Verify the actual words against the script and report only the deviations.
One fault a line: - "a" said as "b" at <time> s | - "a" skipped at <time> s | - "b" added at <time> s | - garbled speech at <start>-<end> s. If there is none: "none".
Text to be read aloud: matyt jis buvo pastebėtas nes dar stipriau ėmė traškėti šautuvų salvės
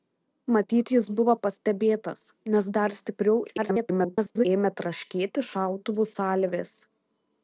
- garbled speech at 3.6-4.5 s